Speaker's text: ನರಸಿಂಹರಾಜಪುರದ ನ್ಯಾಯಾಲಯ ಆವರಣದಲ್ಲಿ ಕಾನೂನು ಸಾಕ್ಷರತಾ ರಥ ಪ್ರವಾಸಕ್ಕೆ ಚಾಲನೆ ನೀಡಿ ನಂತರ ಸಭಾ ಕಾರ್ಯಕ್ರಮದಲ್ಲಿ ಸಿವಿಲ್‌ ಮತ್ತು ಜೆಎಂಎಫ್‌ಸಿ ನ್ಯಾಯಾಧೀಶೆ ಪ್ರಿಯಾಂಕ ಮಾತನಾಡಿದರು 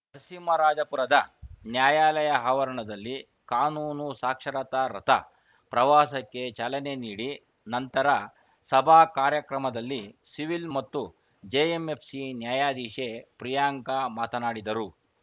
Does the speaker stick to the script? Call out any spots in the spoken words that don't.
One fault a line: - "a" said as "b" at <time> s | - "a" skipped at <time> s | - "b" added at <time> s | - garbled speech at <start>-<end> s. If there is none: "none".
none